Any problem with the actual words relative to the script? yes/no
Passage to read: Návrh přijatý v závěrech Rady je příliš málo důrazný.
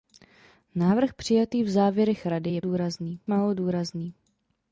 yes